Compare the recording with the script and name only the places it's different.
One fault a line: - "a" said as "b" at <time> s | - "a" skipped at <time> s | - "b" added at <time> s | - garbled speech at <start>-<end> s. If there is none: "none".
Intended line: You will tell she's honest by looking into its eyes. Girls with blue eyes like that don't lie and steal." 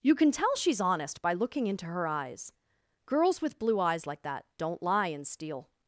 - "will" said as "can" at 0.1 s
- "its" said as "her" at 1.9 s